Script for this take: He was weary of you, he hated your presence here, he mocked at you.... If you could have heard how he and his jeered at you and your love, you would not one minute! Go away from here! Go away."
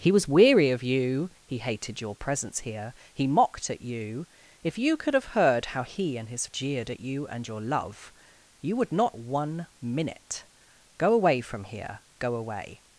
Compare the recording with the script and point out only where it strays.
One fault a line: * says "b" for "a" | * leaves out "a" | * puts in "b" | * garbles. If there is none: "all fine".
all fine